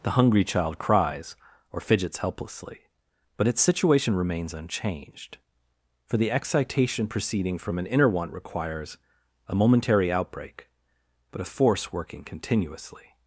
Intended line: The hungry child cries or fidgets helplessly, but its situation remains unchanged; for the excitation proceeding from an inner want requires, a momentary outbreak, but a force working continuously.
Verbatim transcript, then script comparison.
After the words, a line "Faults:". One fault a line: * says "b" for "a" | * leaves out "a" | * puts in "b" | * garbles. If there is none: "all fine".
The hungry child cries or fidgets helplessly, but its situation remains unchanged; for the excitation proceeding from an inner want requires, a momentary outbreak, but a force working continuously.
Faults:
all fine